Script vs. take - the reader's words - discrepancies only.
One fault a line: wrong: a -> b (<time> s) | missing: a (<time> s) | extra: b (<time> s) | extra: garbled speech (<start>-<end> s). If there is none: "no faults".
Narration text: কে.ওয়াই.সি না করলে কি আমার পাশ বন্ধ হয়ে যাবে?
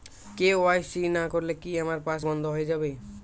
no faults